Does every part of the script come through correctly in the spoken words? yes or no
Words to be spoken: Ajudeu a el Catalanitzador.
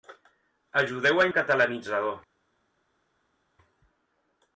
yes